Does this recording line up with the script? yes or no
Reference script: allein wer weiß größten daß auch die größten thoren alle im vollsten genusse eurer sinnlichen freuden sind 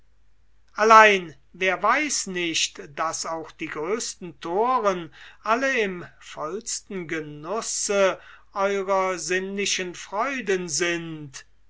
no